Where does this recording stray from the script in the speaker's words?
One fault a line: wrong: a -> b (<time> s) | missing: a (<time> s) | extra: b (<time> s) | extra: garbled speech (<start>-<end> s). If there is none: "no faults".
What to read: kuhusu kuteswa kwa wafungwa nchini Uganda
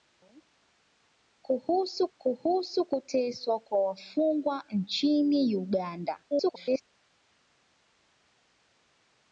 extra: kuhusu (2.2 s)
extra: garbled speech (6.3-6.8 s)